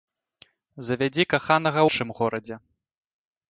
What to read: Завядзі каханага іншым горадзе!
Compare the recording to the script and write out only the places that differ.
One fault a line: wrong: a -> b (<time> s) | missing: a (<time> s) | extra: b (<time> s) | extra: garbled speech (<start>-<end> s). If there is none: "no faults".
no faults